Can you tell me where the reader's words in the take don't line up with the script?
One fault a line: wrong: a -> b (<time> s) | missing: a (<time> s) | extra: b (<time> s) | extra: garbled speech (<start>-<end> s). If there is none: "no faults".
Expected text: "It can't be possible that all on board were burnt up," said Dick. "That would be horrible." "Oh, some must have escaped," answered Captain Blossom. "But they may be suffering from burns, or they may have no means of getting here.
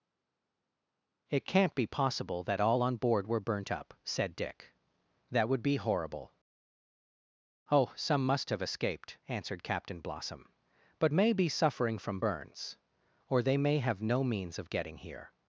missing: they (11.1 s)